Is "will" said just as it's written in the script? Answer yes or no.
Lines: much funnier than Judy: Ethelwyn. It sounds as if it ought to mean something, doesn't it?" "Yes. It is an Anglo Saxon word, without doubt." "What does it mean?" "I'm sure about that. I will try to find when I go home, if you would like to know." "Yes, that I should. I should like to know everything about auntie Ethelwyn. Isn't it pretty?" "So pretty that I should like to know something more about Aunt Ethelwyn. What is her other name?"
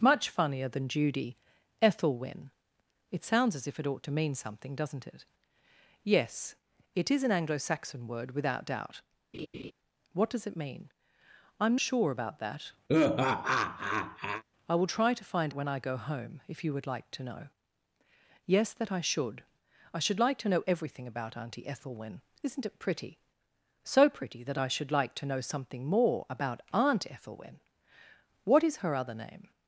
yes